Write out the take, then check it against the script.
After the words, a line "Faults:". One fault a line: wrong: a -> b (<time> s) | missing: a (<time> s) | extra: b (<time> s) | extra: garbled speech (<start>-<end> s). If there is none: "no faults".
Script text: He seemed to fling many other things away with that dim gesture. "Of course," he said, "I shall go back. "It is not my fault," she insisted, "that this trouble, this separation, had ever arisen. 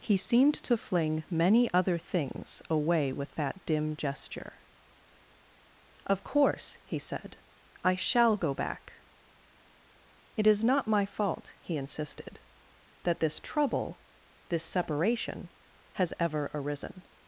He seemed to fling many other things away with that dim gesture. "Of course," he said, "I shall go back. "It is not my fault," he insisted, "that this trouble, this separation, has ever arisen.
Faults:
wrong: she -> he (11.6 s)
wrong: had -> has (15.9 s)